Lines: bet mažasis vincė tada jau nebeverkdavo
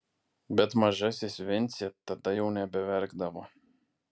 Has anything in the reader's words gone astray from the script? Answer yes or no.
no